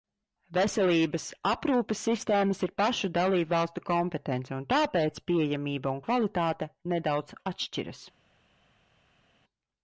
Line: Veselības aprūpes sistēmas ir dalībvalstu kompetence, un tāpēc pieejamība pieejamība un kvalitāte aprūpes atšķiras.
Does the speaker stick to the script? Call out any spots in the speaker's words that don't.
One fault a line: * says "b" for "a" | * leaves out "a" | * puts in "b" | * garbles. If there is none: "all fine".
* puts in "pašu"
* leaves out "pieejamība"
* says "nedaudz" for "aprūpes"